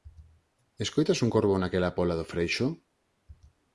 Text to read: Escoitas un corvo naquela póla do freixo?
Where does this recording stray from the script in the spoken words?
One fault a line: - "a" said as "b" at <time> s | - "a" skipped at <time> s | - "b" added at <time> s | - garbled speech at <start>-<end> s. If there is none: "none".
none